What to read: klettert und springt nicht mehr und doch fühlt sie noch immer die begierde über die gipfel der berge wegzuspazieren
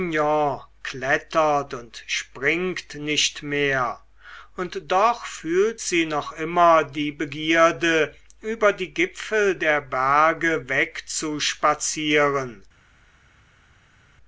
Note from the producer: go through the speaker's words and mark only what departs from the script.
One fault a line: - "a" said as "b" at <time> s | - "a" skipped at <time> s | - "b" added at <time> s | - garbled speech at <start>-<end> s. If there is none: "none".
none